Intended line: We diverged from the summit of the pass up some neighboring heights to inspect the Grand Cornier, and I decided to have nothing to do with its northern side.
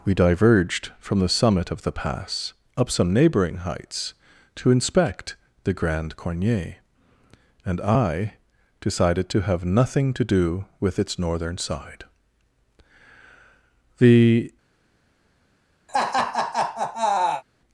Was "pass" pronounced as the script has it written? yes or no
yes